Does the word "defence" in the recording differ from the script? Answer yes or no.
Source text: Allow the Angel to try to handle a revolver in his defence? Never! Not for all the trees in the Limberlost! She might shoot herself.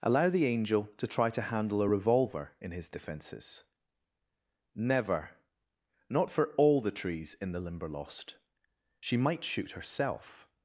yes